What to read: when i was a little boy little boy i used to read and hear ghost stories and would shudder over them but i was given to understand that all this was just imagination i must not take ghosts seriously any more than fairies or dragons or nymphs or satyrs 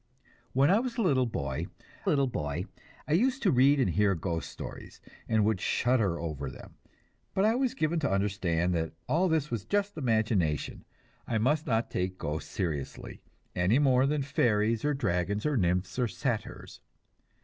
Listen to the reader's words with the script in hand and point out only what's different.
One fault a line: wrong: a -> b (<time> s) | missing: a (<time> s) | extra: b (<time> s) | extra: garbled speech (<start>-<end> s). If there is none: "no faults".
no faults